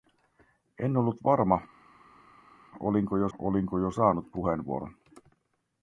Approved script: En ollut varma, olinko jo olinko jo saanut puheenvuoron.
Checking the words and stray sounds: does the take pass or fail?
pass